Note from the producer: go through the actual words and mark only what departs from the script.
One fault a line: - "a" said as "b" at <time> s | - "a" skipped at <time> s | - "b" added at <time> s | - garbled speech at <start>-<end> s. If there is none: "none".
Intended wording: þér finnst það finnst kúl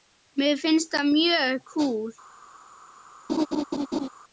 - "þér" said as "mér" at 0.4 s
- "finnst" said as "mjög" at 1.1 s